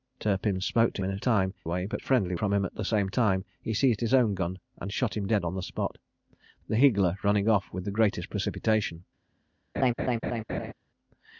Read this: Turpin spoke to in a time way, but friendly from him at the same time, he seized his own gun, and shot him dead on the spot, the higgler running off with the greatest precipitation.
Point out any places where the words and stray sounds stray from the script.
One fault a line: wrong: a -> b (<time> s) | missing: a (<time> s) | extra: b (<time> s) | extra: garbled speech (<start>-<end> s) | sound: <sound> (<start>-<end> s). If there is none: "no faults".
sound: laugh (9.7-10.7 s)